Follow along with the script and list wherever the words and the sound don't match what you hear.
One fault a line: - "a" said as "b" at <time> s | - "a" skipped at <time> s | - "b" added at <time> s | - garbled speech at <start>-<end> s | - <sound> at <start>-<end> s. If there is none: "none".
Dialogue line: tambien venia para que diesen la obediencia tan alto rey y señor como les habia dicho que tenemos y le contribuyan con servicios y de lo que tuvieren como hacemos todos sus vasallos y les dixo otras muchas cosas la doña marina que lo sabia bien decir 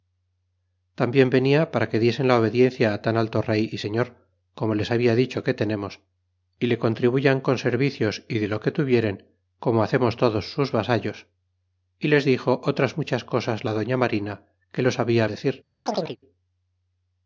- "bien" skipped at 15.3 s
- chirp at 15.9-16.2 s